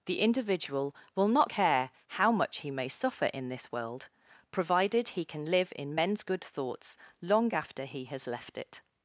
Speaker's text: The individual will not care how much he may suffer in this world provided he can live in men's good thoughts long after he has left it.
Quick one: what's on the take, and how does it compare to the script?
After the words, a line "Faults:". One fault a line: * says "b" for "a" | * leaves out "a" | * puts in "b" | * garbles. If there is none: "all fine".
The individual will not care how much he may suffer in this world provided he can live in men's good thoughts long after he has left it.
Faults:
all fine